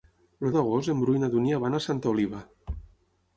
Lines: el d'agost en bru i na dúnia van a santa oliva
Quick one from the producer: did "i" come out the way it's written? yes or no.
yes